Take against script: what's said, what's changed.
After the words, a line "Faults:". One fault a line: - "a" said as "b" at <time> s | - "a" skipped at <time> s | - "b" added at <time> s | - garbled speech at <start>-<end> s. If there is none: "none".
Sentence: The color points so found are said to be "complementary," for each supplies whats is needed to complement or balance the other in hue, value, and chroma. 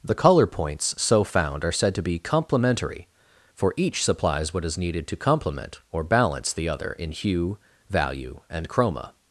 The color points so found are said to be "complementary," for each supplies what is needed to complement or balance the other in hue, value, and chroma.
Faults:
- "whats" said as "what" at 4.5 s